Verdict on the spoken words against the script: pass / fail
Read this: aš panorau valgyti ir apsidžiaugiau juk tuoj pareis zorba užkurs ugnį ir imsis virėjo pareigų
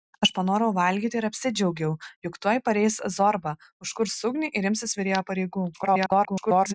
fail